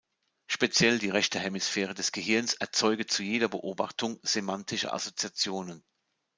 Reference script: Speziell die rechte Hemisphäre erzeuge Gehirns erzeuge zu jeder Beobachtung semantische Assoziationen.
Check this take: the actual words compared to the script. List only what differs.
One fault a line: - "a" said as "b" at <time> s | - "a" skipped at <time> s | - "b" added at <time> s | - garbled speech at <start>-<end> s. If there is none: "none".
- "erzeuge" said as "des" at 1.9 s